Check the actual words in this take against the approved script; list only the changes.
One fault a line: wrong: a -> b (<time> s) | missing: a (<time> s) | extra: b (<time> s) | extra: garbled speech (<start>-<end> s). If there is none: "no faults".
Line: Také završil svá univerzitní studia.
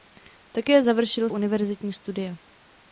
missing: svá (1.3 s)